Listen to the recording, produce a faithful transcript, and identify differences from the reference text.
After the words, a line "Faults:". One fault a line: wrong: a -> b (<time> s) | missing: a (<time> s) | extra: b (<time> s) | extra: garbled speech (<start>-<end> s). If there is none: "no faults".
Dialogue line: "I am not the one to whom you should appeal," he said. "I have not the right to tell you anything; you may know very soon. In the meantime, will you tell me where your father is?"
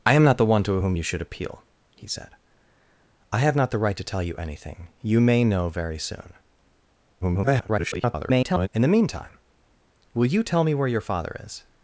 "I am not the one to whom you should appeal," he said. "I have not the right to tell you anything; you may know very soon. [garbled] In the meantime, will you tell me where your father is?"
Faults:
extra: garbled speech (7.2-8.7 s)